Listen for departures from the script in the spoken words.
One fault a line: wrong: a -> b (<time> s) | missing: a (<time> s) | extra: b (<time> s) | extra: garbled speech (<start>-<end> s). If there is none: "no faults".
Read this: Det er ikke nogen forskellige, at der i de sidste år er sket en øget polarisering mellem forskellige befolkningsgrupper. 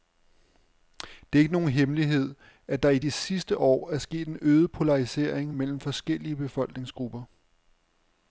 wrong: forskellige -> hemmelighed (1.7 s)